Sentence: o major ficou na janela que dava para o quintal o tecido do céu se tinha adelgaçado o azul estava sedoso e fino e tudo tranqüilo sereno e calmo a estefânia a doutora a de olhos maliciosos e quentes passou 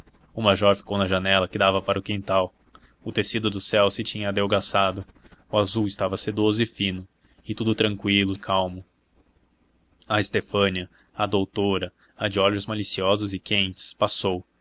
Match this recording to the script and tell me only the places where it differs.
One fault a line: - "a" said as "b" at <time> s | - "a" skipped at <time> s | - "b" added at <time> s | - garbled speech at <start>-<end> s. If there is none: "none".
- "sereno" skipped at 8.3 s